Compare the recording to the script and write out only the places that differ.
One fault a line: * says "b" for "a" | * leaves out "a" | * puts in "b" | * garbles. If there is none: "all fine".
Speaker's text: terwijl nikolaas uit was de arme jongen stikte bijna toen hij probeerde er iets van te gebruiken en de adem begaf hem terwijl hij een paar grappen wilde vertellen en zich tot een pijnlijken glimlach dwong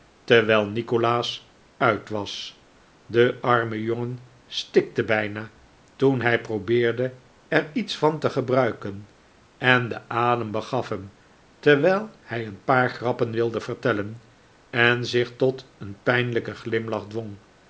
all fine